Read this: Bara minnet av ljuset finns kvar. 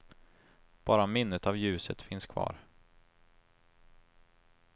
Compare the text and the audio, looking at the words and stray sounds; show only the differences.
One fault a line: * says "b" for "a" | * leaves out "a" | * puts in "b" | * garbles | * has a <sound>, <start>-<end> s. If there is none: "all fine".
all fine